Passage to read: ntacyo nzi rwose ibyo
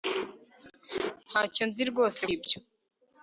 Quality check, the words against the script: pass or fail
pass